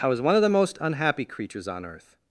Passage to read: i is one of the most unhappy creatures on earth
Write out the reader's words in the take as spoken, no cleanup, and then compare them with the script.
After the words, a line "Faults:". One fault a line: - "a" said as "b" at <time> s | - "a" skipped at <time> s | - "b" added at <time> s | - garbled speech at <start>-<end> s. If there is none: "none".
i was one of the most unhappy creatures on earth
Faults:
- "is" said as "was" at 0.1 s